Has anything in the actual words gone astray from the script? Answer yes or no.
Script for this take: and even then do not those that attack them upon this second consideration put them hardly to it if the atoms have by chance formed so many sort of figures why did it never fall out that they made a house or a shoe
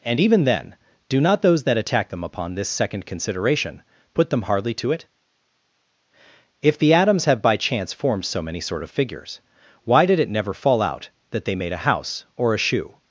no